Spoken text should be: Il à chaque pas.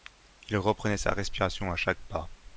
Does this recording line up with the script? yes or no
no